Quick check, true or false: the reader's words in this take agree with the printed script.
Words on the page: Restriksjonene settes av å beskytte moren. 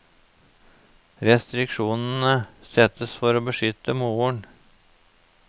false